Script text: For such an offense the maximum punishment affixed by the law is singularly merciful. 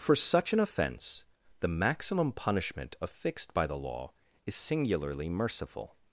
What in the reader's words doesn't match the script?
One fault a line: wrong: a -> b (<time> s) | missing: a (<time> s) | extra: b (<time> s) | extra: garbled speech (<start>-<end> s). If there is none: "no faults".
no faults